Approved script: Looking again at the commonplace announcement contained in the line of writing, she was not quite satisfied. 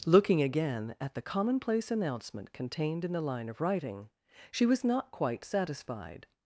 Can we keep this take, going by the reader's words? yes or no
yes